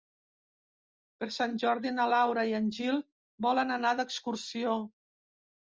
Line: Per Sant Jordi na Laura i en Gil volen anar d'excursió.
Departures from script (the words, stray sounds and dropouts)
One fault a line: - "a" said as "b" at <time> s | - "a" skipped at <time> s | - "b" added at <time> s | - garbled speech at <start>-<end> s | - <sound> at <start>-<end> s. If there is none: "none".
none